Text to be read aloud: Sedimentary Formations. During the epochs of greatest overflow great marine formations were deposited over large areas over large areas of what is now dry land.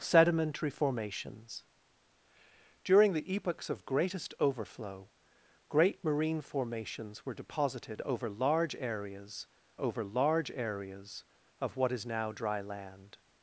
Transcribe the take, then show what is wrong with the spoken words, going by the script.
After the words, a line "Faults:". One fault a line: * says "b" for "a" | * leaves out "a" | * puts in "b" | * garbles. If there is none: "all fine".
Sedimentary Formations. During the epochs of greatest overflow great marine formations were deposited over large areas over large areas of what is now dry land.
Faults:
all fine